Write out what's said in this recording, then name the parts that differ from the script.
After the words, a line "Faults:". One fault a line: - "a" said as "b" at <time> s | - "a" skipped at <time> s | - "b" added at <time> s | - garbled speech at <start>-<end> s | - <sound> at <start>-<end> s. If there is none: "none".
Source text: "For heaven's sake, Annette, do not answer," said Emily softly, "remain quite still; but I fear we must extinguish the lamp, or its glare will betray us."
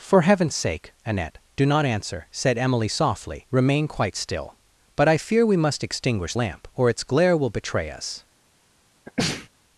"For heaven's sake, Annette, do not answer," said Emily softly, "remain quite still; but I fear we must extinguish lamp, or its glare will betray us."
Faults:
- "the" skipped at 6.3 s
- sneeze at 9.1-9.5 s